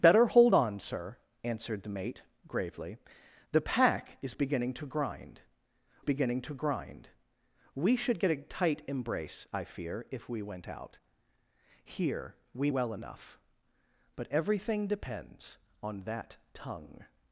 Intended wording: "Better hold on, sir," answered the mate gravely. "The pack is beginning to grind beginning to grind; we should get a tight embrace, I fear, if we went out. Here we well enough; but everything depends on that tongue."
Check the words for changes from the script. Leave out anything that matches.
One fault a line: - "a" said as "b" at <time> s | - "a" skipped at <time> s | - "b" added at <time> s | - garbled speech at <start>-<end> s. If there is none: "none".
none